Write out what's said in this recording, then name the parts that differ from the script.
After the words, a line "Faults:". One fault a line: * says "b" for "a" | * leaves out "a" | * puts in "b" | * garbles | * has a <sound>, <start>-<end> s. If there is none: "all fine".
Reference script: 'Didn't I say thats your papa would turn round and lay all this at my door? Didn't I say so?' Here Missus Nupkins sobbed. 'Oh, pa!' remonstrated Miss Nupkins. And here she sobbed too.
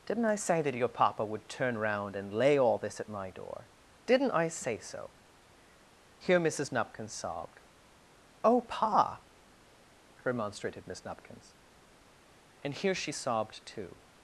'Didn't I say that your papa would turn round and lay all this at my door? Didn't I say so?' Here Missus Nupkins sobbed. 'Oh, pa!' remonstrated Miss Nupkins. And here she sobbed too.
Faults:
* says "that" for "thats"